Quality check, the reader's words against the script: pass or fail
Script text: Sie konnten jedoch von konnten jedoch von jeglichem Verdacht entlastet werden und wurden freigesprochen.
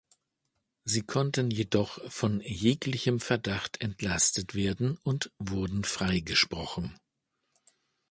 fail